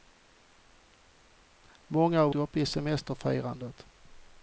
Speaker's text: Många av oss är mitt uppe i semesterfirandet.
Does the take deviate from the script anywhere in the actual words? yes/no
yes